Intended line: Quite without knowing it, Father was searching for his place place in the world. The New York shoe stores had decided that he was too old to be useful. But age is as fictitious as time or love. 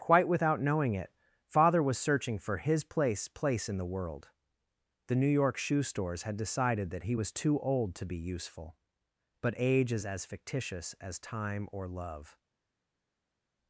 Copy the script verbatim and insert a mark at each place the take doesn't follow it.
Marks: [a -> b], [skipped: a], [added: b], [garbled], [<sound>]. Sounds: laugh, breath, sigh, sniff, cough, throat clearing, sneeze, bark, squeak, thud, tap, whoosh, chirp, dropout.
Quite without knowing it, Father was searching for his place place in the world. The New York shoe stores had decided that he was too old to be useful. But age is as fictitious as time or love.